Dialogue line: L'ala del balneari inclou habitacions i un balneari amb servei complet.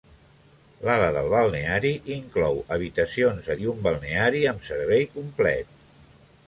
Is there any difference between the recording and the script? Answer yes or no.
no